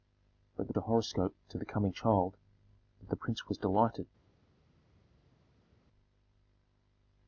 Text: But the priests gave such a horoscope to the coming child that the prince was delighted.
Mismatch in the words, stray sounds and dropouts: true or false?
true